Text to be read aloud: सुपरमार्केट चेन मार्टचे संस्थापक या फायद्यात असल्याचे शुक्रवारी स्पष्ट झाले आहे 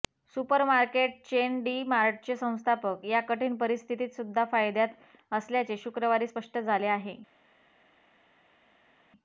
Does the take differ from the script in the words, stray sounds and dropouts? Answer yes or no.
yes